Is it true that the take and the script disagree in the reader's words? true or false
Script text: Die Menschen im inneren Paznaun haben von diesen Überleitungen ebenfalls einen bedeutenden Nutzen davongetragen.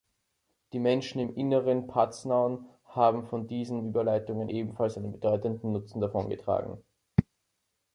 false